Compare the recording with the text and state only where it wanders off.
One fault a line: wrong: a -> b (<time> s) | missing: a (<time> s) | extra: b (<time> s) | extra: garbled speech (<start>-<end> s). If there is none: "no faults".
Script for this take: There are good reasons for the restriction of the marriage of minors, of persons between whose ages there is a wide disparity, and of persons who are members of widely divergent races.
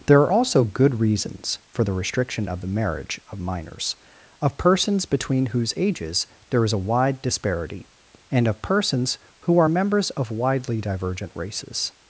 extra: also (0.3 s)